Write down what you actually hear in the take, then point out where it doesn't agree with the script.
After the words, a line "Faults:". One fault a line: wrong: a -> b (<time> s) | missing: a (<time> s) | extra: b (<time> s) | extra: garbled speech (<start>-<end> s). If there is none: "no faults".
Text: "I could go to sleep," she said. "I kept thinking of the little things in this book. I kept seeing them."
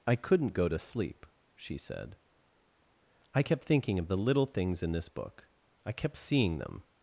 "I couldn't go to sleep," she said. "I kept thinking of the little things in this book. I kept seeing them."
Faults:
wrong: could -> couldn't (0.1 s)